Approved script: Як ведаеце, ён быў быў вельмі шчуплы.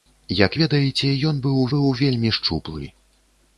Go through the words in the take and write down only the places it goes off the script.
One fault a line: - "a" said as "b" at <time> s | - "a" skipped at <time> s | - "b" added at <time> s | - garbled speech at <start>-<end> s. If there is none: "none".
none